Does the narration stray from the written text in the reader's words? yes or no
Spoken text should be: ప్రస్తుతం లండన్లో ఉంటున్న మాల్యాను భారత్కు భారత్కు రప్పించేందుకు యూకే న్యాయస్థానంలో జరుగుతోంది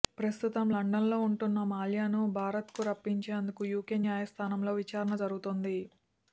yes